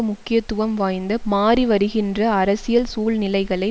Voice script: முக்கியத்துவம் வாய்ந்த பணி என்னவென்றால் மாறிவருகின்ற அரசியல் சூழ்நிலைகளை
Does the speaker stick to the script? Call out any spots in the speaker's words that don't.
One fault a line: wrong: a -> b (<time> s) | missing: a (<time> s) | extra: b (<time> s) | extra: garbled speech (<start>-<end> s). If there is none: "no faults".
missing: பணி என்னவென்றால் (1.2 s)